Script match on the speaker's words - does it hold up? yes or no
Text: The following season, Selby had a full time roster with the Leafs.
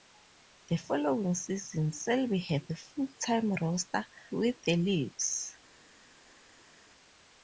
yes